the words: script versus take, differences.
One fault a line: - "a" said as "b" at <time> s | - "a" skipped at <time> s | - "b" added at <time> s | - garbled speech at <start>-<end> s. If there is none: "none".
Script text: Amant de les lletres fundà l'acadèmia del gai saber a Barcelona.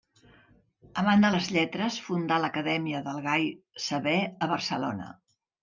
none